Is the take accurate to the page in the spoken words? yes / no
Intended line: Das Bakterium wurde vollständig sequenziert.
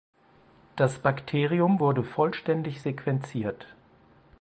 yes